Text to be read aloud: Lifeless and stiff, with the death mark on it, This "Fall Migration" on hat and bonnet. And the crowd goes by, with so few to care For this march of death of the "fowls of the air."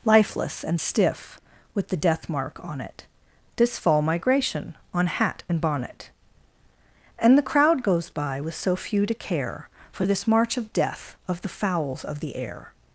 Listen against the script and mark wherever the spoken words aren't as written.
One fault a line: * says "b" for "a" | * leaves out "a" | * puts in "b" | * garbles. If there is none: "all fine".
all fine